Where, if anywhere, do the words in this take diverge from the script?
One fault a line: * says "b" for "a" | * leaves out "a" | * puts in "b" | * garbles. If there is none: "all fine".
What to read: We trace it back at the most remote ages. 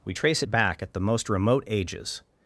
all fine